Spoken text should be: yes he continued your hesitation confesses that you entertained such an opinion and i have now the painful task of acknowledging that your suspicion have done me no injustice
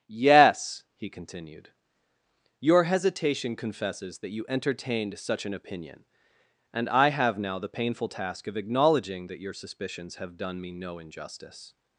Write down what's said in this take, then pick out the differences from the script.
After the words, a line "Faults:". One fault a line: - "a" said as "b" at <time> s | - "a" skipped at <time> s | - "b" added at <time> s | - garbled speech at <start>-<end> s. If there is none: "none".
yes he continued your hesitation confesses that you entertained such an opinion and i have now the painful task of acknowledging that your suspicions have done me no injustice
Faults:
- "suspicion" said as "suspicions" at 9.5 s